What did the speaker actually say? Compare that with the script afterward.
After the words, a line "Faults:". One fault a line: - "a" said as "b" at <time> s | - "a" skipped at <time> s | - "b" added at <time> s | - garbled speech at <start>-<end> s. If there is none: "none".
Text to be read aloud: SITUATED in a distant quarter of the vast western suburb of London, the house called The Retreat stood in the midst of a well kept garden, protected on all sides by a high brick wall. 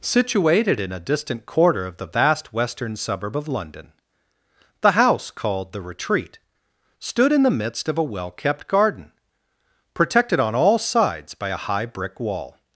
SITUATED in a distant quarter of the vast western suburb of London, the house called The Retreat stood in the midst of a well kept garden, protected on all sides by a high brick wall.
Faults:
none